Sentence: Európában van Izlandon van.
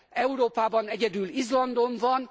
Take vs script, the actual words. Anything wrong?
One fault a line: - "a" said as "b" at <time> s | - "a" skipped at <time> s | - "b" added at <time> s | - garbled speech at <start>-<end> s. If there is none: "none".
- "van" said as "egyedül" at 0.8 s